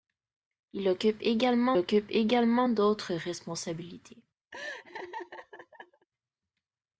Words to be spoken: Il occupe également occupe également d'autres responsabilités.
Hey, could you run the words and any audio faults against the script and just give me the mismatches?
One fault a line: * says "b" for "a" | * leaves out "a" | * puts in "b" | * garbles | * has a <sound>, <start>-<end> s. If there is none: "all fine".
* has a laugh, 4.5-6.1 s